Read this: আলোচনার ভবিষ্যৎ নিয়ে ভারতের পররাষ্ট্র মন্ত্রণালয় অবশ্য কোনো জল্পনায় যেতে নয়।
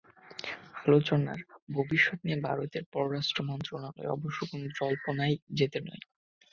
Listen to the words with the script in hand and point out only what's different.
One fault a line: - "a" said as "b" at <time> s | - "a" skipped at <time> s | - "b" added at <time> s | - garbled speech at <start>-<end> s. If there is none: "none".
none